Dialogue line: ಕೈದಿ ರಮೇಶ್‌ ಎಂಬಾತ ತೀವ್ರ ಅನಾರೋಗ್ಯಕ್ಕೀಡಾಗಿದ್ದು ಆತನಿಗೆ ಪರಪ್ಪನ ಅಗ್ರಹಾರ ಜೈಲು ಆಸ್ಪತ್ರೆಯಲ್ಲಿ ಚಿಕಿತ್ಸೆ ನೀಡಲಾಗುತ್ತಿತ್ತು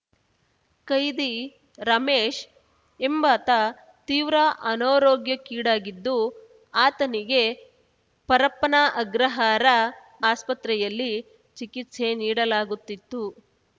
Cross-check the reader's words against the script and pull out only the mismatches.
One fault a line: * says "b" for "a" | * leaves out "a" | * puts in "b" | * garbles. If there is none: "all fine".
* leaves out "ಜೈಲು"